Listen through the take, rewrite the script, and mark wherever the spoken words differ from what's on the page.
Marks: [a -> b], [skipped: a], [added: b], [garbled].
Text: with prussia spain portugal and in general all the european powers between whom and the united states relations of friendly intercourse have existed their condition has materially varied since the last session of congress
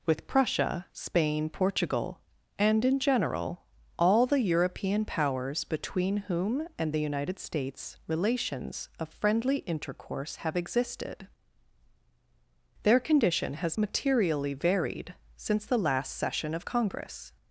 with prussia spain portugal and in general all the european powers between whom and the united states relations of friendly intercourse have existed their condition has materially varied since the last session of congress